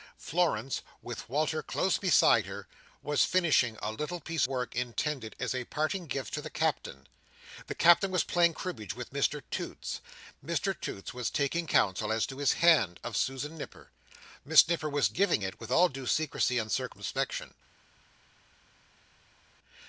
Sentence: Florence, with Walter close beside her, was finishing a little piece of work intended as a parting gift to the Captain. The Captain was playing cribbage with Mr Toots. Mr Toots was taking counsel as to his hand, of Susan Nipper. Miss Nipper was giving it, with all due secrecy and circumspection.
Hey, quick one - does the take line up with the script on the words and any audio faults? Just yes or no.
no